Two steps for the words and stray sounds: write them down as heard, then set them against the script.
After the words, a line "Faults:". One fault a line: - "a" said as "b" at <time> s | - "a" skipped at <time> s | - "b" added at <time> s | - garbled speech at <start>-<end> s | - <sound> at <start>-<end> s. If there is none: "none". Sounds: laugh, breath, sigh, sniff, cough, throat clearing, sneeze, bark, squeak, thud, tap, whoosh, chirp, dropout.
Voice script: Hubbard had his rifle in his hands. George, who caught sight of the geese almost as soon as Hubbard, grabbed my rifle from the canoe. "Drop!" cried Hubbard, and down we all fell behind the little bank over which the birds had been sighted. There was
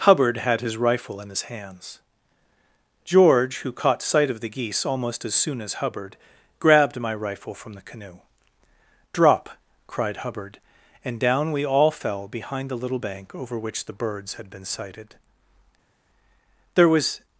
Hubbard had his rifle in his hands. George, who caught sight of the geese almost as soon as Hubbard, grabbed my rifle from the canoe. "Drop!" cried Hubbard, and down we all fell behind the little bank over which the birds had been sighted. There was
Faults:
none